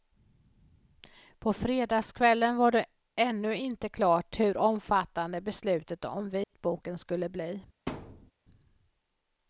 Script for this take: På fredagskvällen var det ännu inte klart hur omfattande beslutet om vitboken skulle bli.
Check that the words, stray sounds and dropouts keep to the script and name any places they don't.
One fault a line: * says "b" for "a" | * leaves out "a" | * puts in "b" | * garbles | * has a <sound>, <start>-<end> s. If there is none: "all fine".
* has a dropout, 6.4-6.5 s
* has a thud, 7.9-8.3 s